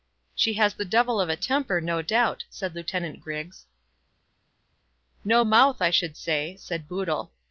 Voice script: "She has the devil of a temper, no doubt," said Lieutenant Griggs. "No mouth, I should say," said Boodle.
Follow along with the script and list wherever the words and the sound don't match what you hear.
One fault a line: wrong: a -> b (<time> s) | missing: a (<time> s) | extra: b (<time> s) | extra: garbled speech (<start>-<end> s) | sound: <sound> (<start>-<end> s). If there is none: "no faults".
no faults